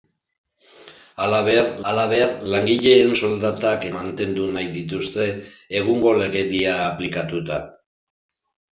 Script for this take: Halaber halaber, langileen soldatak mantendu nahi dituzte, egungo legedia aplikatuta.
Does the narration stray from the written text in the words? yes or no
no